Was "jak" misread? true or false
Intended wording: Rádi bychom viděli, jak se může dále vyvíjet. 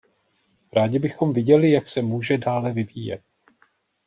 false